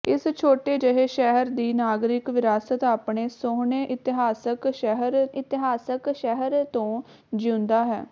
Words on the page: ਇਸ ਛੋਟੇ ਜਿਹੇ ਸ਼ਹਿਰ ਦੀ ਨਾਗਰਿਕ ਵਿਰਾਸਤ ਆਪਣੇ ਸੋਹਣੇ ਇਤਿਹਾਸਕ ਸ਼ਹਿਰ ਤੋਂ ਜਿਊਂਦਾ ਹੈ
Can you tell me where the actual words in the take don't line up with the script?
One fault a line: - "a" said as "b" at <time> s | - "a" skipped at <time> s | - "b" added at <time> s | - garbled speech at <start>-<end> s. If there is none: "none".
- "ਇਤਿਹਾਸਕ ਸ਼ਹਿਰ" added at 5.3 s